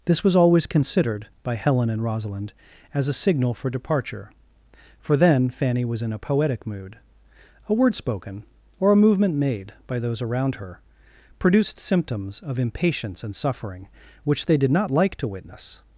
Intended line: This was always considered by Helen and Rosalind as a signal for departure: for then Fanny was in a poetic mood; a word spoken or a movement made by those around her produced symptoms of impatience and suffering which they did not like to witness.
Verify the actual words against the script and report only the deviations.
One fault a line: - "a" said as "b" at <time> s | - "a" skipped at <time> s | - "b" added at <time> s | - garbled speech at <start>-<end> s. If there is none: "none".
none